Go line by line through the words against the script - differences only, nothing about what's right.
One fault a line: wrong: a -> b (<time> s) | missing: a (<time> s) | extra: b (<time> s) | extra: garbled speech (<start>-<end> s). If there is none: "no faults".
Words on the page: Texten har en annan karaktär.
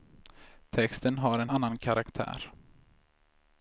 no faults